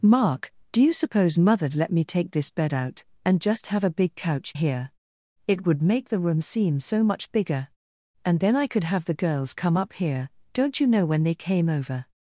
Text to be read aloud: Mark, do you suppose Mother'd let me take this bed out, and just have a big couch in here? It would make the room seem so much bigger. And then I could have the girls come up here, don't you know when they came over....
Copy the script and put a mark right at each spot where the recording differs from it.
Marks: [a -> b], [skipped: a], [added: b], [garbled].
Mark, do you suppose Mother'd let me take this bed out, and just have a big couch [skipped: in] here? It would make the room seem so much bigger. And then I could have the girls come up here, don't you know when they came over....